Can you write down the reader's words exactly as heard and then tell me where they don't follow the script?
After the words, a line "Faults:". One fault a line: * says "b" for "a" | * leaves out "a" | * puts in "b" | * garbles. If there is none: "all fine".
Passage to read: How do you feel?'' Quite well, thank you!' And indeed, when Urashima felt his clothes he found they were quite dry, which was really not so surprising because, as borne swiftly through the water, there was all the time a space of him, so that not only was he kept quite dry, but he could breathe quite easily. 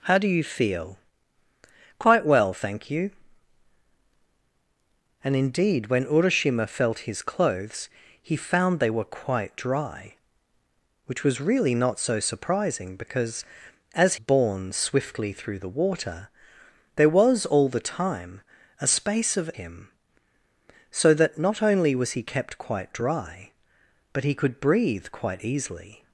How do you feel?'' Quite well, thank you!' And indeed, when Urashima felt his clothes he found they were quite dry, which was really not so surprising because, as borne swiftly through the water, there was all the time a space of him, so that not only was he kept quite dry, but he could breathe quite easily.
Faults:
all fine